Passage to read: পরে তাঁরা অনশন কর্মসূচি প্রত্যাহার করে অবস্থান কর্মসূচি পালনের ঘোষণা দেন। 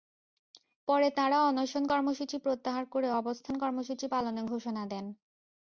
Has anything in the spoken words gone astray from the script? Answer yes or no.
no